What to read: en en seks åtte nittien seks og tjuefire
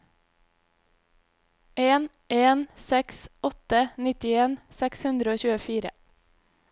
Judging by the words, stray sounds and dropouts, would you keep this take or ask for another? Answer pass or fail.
fail